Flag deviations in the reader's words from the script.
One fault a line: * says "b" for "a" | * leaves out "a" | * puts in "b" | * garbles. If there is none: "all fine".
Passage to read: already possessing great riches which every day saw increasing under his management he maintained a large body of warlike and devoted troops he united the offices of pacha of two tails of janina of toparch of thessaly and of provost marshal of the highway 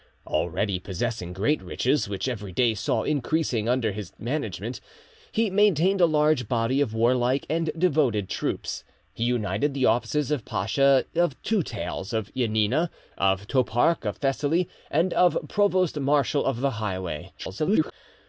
* garbles